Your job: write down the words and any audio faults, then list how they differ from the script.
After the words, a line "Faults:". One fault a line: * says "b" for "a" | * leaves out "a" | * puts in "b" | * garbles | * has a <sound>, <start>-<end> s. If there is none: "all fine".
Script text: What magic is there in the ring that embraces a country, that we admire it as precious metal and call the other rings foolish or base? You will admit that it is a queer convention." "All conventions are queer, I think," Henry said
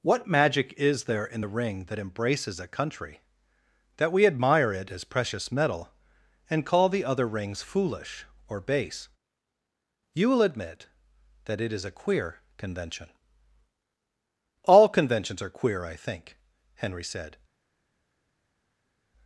What magic is there in the ring that embraces a country, that we admire it as precious metal and call the other rings foolish or base? You will admit that it is a queer convention." "All conventions are queer, I think," Henry said
Faults:
all fine